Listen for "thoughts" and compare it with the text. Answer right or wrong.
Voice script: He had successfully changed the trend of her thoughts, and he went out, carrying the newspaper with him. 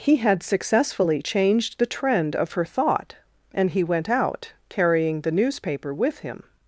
wrong